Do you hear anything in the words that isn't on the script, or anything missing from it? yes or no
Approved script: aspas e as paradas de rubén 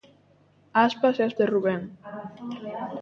yes